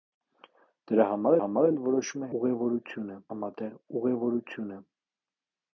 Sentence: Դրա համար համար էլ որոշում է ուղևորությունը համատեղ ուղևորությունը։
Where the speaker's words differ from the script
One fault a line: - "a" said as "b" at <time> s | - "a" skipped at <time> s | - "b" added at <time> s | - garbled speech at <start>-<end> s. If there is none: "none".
none